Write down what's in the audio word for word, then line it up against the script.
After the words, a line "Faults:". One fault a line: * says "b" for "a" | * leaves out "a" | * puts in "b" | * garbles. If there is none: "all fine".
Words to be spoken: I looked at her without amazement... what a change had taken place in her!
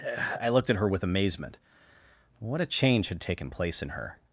I looked at her with amazement... what a change had taken place in her!
Faults:
* says "with" for "without"